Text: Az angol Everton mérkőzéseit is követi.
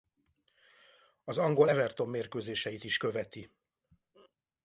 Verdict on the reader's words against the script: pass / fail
pass